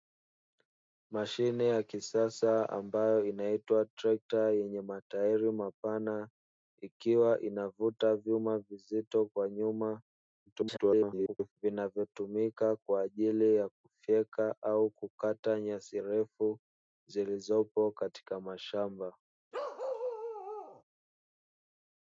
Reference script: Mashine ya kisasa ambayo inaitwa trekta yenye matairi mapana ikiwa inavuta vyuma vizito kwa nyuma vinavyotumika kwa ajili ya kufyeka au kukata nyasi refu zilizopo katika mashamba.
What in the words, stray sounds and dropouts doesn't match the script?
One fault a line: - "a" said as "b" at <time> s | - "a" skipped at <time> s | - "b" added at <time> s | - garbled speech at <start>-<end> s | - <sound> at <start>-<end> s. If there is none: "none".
- garbled speech at 10.5-11.5 s
- bark at 19.5-20.8 s